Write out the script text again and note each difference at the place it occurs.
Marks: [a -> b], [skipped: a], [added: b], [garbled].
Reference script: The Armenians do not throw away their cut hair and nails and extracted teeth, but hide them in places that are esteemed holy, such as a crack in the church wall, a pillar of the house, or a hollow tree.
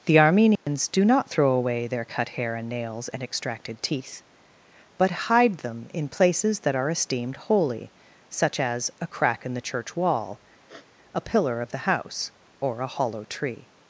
The Armenians do not throw away their cut hair and nails and extracted teeth, but hide them in places that are esteemed holy, such as a crack in the church wall, a pillar of the house, or a hollow tree.